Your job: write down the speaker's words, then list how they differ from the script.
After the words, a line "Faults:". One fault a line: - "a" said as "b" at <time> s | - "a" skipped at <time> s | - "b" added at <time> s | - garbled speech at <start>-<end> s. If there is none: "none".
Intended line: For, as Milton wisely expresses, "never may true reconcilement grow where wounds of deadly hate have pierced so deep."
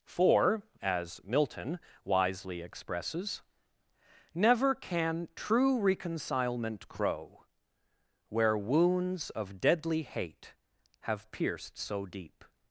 For, as Milton wisely expresses, "never can true reconcilement grow where wounds of deadly hate have pierced so deep."
Faults:
- "may" said as "can" at 4.7 s